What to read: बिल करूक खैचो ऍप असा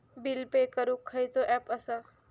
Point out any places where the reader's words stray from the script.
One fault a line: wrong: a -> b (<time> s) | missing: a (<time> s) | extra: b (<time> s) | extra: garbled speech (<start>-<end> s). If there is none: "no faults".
extra: पे (0.5 s)